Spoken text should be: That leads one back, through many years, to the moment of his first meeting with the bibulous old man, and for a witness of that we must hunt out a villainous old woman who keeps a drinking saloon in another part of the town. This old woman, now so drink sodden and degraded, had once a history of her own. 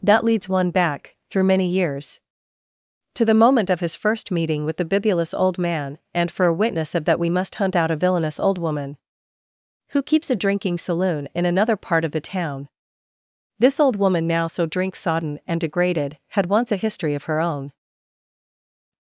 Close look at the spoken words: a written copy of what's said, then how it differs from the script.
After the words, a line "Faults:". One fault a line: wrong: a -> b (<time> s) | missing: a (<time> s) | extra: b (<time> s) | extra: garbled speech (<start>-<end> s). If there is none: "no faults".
That leads one back, through many years, to the moment of his first meeting with the bibulous old man, and for a witness of that we must hunt out a villainous old woman who keeps a drinking saloon in another part of the town. This old woman, now so drink sodden and degraded, had once a history of her own.
Faults:
no faults